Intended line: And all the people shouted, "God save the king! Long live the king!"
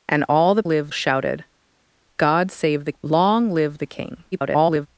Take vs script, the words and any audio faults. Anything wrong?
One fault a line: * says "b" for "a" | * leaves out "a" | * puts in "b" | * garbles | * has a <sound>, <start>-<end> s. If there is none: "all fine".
* says "live" for "people"
* leaves out "king"
* garbles